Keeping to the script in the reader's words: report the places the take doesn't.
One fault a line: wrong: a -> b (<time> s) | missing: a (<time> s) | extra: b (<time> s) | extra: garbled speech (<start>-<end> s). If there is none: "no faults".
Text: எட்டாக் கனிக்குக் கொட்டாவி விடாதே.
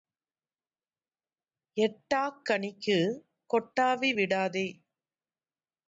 no faults